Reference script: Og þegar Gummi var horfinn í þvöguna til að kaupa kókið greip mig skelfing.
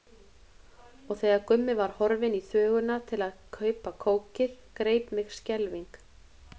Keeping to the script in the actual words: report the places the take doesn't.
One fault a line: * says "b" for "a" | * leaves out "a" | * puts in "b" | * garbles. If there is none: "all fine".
all fine